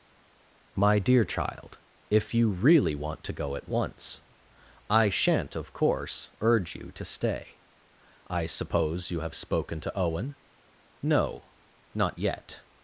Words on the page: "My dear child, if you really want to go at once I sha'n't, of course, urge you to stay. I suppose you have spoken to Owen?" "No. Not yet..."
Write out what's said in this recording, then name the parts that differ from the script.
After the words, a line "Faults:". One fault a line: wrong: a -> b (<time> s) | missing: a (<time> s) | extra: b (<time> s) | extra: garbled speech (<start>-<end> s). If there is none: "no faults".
"My dear child, if you really want to go at once I sha'n't, of course, urge you to stay. I suppose you have spoken to Owen?" "No. Not yet..."
Faults:
no faults